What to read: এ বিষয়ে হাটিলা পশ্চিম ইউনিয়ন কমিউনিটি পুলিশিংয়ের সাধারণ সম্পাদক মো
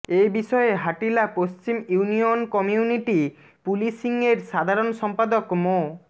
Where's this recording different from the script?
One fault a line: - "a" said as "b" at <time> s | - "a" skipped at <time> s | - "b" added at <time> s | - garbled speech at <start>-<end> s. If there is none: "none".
none